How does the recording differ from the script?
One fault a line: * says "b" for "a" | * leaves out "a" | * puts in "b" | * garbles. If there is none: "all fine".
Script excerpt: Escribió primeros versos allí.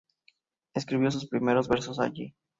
* puts in "sus"